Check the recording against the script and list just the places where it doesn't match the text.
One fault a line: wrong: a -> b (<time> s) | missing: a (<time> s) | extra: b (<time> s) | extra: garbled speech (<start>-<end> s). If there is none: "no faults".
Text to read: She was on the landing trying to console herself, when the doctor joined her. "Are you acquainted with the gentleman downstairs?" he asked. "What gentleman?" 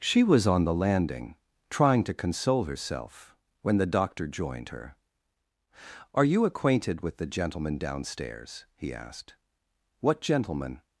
no faults